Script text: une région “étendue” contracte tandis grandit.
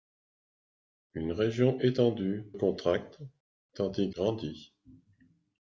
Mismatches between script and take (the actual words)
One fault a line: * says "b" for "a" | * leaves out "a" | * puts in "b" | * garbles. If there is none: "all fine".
all fine